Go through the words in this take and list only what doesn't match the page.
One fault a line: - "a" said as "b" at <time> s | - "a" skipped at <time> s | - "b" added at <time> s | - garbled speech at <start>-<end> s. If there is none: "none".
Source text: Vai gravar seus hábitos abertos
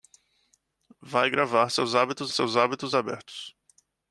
- "seus hábitos" added at 2.3 s